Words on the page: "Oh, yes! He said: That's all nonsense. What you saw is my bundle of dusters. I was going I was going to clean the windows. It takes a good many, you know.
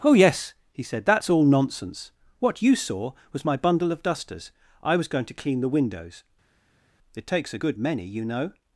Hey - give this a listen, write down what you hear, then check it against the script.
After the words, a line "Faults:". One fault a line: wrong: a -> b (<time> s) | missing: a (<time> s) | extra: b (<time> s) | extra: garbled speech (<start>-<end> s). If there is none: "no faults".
"Oh, yes! He said: That's all nonsense. What you saw was my bundle of dusters. I was going to clean the windows. It takes a good many, you know.
Faults:
wrong: is -> was (3.3 s)
missing: I was going (5.2 s)